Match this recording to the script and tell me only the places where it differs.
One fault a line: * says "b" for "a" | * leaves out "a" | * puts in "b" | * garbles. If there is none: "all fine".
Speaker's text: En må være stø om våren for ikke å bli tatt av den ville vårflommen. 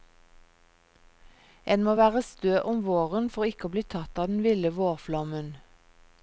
all fine